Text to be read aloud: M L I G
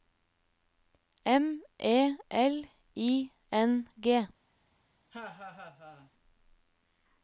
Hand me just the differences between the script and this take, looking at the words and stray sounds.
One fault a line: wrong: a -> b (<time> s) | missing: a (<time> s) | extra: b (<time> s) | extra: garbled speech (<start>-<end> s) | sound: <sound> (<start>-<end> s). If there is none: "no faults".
extra: E (1.8 s)
extra: N (3.5 s)
sound: laugh (5.1-6.1 s)